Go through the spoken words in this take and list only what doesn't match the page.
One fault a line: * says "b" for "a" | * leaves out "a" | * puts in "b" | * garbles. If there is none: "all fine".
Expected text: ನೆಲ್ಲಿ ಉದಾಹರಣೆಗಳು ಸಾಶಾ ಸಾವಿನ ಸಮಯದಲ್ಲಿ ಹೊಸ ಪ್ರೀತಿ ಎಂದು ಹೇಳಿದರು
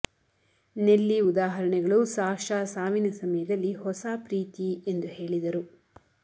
all fine